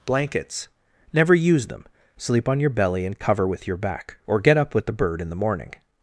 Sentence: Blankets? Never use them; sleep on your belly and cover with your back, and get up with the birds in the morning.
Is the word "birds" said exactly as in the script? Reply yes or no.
no